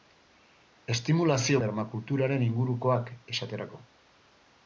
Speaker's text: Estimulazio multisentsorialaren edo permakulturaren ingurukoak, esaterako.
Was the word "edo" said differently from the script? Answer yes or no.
yes